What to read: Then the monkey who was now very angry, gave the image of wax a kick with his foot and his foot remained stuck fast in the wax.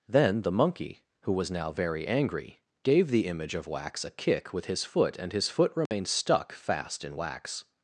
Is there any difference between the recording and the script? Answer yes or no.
yes